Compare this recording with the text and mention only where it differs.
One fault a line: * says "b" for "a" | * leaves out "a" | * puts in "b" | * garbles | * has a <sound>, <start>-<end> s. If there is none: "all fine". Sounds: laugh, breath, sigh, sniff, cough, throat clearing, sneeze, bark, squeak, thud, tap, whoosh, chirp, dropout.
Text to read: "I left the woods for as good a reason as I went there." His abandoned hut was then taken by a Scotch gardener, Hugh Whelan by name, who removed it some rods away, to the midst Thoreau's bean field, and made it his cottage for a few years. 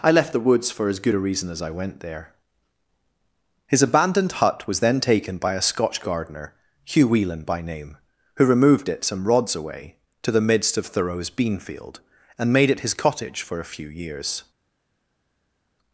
* puts in "of"